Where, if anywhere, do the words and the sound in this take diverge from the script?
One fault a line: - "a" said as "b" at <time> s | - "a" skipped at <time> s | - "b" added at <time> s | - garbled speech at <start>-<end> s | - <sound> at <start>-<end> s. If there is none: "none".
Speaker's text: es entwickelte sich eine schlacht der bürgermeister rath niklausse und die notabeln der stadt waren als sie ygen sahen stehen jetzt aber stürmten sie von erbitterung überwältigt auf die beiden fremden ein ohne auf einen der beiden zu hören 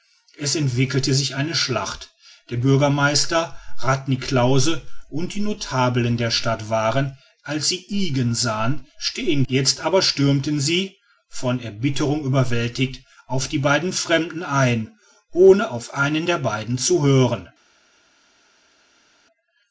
none